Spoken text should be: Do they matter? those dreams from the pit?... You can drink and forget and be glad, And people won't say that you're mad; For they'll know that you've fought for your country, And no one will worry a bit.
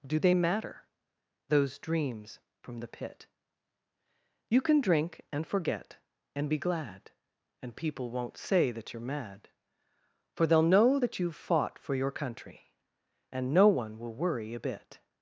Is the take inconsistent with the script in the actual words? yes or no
no